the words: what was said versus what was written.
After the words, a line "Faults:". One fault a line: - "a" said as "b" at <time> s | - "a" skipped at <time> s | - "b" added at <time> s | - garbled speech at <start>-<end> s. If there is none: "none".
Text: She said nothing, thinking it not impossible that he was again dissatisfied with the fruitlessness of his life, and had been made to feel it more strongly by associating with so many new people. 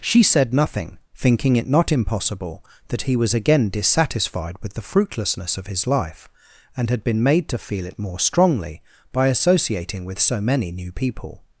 She said nothing, thinking it not impossible that he was again dissatisfied with the fruitlessness of his life, and had been made to feel it more strongly by associating with so many new people.
Faults:
none